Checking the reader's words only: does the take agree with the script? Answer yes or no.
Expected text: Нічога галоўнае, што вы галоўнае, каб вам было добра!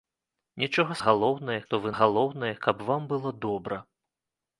yes